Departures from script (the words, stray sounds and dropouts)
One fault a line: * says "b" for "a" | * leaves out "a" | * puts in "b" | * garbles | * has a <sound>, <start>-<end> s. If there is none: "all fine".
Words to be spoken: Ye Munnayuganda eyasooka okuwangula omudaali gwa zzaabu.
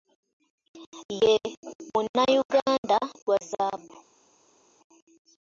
* leaves out "eyasooka okuwangula omudaali"